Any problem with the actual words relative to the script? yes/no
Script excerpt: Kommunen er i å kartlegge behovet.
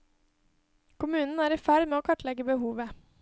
yes